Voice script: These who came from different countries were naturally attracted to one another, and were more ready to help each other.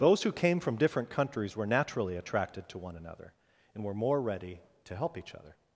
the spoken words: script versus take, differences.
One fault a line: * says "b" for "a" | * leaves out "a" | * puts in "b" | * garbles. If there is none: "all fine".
* says "Those" for "These"